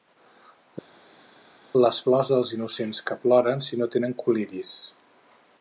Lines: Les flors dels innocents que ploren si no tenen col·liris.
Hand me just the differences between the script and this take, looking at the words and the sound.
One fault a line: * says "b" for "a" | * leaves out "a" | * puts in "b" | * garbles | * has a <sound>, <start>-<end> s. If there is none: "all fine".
all fine